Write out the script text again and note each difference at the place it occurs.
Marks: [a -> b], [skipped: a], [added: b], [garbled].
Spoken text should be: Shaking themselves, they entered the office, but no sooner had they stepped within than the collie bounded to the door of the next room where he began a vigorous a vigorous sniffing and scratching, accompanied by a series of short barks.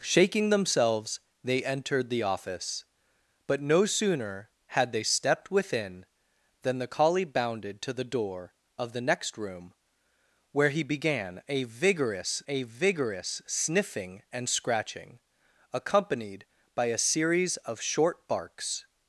Shaking themselves, they entered the office, but no sooner had they stepped within than the collie bounded to the door of the next room where he began a vigorous a vigorous sniffing and scratching, accompanied by a series of short barks.